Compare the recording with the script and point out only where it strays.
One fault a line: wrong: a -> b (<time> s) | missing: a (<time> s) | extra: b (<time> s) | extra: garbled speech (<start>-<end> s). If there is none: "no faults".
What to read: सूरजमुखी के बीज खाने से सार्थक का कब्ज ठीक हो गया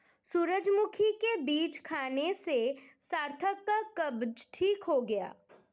no faults